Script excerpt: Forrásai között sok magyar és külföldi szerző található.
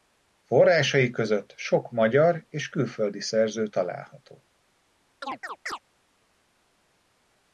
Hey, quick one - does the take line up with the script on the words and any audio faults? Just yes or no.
no